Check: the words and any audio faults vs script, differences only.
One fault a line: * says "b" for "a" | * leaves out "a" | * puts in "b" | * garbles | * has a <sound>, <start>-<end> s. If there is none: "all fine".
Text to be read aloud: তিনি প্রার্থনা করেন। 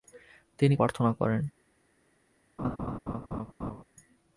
* has a laugh, 2.6-3.8 s